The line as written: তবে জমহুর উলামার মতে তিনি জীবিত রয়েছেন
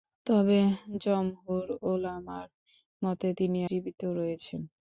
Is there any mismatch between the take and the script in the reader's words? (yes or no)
no